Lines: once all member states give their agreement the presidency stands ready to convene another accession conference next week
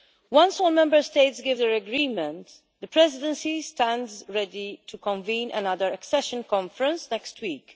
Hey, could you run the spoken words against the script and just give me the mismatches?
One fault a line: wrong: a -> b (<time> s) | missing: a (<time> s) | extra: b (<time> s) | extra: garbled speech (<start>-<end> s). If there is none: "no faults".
no faults